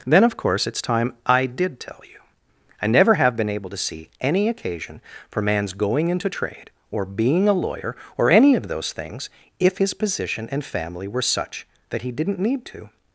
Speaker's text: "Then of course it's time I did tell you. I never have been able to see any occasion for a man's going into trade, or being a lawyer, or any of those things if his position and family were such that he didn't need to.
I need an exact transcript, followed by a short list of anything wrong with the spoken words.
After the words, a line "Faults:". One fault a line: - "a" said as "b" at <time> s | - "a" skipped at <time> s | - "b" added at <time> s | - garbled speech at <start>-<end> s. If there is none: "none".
"Then of course it's time I did tell you. I never have been able to see any occasion for man's going into trade, or being a lawyer, or any of those things if his position and family were such that he didn't need to.
Faults:
- "a" skipped at 5.4 s